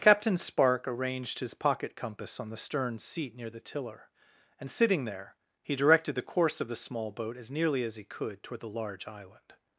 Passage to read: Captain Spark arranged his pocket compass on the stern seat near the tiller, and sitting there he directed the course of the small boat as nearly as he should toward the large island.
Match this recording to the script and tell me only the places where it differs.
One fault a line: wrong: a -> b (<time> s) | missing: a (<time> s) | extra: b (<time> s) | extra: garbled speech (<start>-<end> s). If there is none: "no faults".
wrong: should -> could (8.1 s)